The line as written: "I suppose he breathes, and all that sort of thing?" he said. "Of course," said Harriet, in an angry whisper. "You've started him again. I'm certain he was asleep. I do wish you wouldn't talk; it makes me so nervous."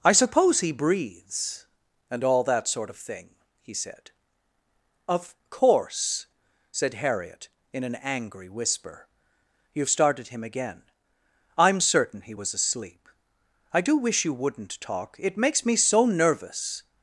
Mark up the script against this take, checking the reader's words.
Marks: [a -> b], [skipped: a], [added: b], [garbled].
"I suppose he breathes, and all that sort of thing?" he said. "Of course," said Harriet, in an angry whisper. "You've started him again. I'm certain he was asleep. I do wish you wouldn't talk; it makes me so nervous."